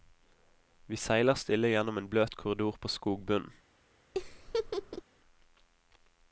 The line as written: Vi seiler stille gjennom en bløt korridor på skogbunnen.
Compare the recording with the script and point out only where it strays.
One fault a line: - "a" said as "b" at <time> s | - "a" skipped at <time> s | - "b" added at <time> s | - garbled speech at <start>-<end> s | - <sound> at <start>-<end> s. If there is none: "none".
- laugh at 4.1-5.0 s